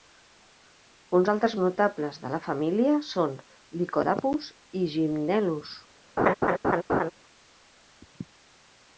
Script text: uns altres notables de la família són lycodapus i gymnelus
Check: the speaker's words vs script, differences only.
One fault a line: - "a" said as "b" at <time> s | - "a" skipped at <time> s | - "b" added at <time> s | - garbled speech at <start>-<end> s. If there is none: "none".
none